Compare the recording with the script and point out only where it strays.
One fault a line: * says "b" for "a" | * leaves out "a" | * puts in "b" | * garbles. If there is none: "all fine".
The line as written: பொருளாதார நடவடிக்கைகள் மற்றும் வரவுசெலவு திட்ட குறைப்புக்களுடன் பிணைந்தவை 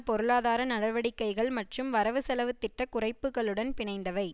all fine